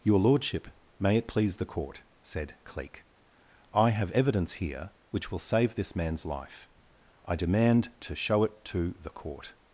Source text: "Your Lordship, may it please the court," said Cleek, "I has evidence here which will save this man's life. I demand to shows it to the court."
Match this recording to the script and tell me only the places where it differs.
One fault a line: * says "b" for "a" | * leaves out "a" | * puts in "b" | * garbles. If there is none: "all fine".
* says "have" for "has"
* says "show" for "shows"